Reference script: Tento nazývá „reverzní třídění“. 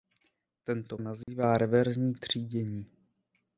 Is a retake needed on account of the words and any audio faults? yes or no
yes